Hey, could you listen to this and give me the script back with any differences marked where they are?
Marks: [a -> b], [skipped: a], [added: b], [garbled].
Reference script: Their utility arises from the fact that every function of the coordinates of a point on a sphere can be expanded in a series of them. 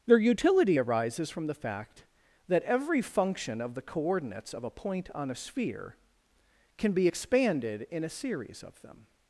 Their utility arises from the fact that every function of the coordinates of a point on a sphere can be expanded in a series of them.